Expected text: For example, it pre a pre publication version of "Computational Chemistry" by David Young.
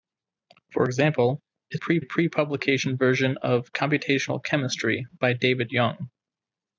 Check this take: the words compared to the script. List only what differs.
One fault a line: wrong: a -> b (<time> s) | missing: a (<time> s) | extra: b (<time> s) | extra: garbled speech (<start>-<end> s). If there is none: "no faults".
no faults